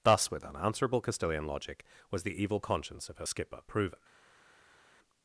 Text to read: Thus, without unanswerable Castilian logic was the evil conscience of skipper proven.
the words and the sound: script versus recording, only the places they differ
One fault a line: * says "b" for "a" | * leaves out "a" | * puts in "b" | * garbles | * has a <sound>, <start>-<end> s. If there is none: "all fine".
* says "with" for "without"
* puts in "her"